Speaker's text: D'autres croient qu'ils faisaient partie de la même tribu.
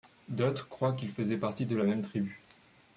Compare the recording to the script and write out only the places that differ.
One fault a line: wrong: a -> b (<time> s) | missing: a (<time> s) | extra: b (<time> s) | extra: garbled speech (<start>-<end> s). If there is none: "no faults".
no faults